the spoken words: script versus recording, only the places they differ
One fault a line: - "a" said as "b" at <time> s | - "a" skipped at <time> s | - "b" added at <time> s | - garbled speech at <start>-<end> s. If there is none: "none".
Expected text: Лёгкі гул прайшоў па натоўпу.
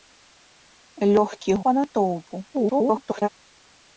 - "гул прайшоў" skipped at 1.5 s
- garbled speech at 2.5-3.3 s